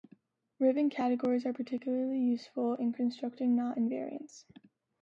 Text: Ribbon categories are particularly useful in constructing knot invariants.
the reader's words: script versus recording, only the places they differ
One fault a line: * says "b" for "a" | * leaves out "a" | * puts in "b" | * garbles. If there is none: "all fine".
all fine